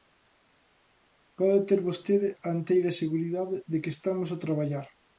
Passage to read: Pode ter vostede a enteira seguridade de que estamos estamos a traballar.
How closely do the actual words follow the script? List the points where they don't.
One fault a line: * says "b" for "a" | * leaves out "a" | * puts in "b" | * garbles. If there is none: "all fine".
* leaves out "estamos"